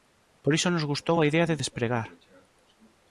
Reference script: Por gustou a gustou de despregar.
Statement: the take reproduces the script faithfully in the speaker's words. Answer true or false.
false